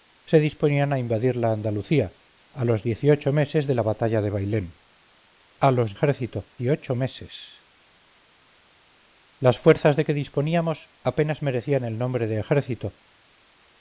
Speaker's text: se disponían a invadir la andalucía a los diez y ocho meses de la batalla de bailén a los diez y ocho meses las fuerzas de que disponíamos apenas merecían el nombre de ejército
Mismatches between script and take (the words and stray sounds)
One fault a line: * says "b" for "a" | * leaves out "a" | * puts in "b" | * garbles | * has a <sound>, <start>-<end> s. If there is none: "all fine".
* says "ejército" for "diez"